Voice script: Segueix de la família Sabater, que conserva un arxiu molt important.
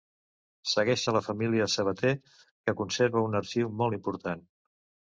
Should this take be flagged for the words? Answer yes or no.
no